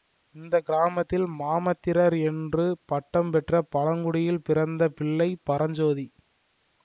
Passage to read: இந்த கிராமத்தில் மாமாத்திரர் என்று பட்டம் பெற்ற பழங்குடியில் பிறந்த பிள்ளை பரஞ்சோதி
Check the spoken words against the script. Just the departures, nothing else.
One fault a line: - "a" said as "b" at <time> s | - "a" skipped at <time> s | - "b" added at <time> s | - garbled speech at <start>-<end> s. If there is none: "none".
none